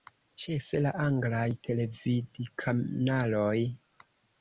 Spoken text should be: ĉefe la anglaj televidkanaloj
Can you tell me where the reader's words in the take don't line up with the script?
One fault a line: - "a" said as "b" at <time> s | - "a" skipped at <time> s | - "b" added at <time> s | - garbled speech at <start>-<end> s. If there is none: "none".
none